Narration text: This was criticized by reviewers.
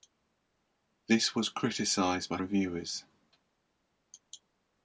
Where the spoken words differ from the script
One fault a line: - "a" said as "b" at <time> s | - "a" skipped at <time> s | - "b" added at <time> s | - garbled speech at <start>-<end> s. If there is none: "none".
none